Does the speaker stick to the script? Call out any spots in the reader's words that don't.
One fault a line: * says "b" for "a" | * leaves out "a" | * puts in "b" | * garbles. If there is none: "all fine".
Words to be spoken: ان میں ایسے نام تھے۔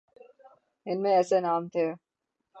all fine